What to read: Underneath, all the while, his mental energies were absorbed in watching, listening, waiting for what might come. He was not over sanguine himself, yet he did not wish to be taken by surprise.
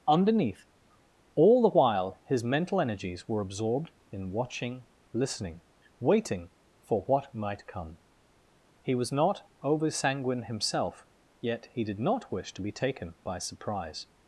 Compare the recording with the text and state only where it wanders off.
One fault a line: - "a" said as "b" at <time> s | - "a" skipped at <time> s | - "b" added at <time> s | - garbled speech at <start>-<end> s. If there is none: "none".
none